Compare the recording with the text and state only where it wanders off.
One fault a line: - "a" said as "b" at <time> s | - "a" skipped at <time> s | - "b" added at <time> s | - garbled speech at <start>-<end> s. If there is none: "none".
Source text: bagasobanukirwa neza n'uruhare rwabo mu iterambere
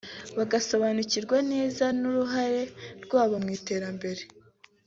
none